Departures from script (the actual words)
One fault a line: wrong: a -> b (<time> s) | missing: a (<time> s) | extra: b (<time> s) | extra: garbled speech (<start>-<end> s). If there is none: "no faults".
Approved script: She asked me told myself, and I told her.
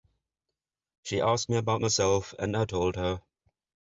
wrong: told -> about (1.6 s)